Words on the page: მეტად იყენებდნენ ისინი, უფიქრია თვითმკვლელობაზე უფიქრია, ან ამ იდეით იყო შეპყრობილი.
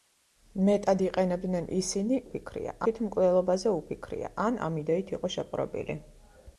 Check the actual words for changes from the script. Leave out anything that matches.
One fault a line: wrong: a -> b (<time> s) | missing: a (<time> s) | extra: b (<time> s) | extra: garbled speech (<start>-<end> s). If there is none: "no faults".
no faults